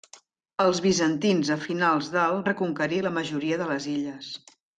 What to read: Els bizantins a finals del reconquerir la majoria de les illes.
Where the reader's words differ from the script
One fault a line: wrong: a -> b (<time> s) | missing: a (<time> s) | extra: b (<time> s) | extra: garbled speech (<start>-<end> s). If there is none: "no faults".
no faults